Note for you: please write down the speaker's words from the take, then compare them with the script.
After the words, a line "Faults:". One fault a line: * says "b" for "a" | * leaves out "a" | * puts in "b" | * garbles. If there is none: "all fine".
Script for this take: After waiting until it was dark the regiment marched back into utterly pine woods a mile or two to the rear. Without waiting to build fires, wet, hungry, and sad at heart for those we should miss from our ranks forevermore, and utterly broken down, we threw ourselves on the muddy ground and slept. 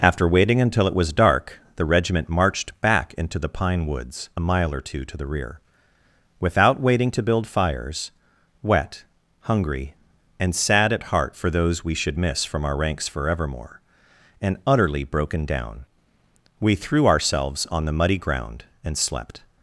After waiting until it was dark the regiment marched back into the pine woods a mile or two to the rear. Without waiting to build fires, wet, hungry, and sad at heart for those we should miss from our ranks forevermore, and utterly broken down, we threw ourselves on the muddy ground and slept.
Faults:
* says "the" for "utterly"